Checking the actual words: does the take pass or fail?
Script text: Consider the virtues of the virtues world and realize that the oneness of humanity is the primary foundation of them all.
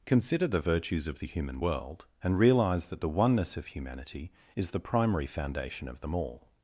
fail